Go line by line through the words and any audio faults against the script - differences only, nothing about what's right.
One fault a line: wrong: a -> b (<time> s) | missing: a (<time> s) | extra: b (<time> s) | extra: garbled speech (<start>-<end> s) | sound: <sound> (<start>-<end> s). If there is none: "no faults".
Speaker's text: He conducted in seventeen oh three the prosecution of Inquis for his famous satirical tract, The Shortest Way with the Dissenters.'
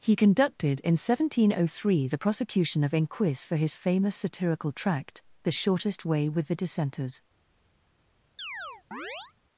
sound: chirp (8.4-9.3 s)